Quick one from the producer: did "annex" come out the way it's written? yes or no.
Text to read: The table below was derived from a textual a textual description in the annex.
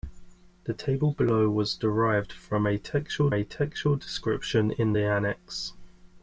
yes